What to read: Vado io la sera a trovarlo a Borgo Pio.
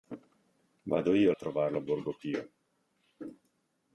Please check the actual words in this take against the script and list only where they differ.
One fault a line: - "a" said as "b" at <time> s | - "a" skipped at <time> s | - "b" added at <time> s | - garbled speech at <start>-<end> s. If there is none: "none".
- "la sera" skipped at 1.3 s